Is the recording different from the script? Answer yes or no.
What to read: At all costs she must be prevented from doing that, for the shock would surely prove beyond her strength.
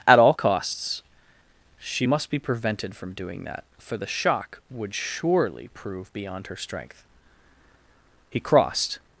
yes